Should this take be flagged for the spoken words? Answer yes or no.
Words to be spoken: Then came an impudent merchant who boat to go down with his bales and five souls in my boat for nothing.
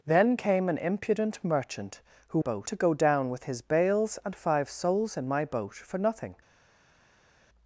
no